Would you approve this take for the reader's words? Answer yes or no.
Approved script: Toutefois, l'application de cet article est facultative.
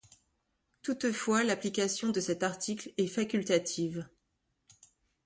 yes